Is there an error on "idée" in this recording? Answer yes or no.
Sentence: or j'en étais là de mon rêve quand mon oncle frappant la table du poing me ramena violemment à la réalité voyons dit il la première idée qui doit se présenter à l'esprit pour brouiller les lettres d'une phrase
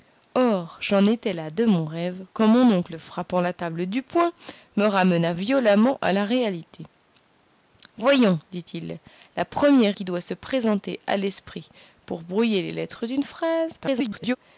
yes